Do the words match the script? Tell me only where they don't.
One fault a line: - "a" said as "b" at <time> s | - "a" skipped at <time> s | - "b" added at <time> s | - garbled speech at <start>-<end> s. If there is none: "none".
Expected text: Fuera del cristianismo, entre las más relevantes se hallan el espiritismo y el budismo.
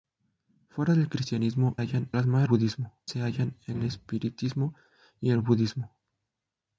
- "entre" said as "hallan" at 1.8 s
- "relevantes" said as "budismo" at 2.4 s